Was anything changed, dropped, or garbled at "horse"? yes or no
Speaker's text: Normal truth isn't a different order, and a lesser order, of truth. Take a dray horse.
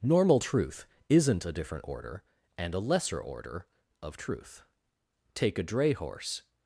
no